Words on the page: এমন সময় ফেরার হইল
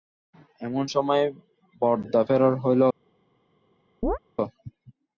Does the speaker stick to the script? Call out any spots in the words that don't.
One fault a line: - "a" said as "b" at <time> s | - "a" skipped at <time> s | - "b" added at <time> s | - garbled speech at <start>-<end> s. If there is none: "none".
- "বরদা" added at 1.8 s